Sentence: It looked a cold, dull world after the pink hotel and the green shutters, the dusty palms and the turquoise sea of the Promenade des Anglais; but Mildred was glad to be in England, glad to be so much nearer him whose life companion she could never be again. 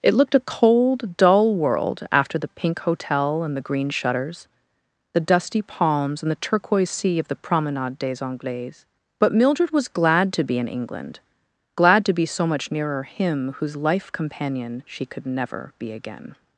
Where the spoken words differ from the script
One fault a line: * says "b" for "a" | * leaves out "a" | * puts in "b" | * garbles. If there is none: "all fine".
all fine